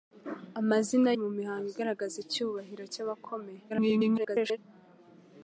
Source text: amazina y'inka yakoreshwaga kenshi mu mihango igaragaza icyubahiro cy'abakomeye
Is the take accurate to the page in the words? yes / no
no